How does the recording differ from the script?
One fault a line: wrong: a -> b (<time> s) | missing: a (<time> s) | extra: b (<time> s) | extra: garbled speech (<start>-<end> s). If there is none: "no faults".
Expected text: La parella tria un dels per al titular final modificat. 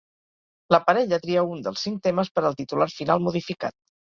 extra: cinc temes (1.9 s)